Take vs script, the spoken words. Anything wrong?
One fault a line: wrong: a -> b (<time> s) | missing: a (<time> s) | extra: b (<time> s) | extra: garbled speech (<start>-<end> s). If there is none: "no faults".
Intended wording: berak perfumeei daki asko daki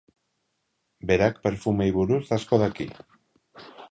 wrong: daki -> buruz (2.0 s)